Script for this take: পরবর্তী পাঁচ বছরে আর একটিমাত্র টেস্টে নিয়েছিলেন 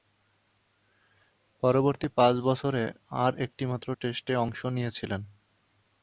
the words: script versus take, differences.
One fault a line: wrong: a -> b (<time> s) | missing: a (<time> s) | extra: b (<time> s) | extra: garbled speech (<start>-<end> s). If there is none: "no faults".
extra: অংশ (4.3 s)